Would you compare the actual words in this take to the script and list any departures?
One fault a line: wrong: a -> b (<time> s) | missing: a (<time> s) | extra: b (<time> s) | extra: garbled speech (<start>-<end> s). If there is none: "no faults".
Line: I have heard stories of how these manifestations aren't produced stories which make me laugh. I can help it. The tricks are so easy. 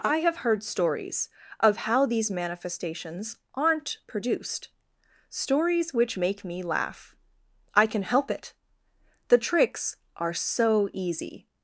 no faults